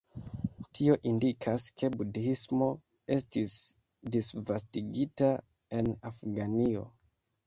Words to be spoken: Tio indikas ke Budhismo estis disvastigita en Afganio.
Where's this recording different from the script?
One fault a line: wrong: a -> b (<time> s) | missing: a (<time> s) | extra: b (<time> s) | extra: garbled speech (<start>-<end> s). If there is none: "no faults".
no faults